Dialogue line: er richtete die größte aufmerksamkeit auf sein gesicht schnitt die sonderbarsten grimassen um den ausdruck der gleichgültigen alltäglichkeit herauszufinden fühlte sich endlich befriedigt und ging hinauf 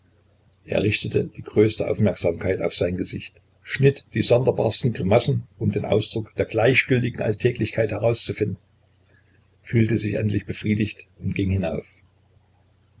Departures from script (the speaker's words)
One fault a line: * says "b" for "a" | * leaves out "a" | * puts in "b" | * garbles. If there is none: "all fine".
all fine